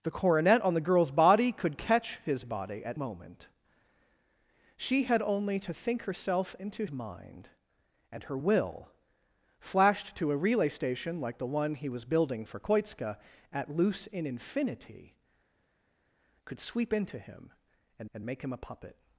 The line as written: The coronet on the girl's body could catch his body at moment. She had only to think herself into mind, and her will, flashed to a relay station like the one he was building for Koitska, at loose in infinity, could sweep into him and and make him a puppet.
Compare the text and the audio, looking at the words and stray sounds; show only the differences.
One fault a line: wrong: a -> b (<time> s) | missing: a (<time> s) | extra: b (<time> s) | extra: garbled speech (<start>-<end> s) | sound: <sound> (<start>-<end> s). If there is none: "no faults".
no faults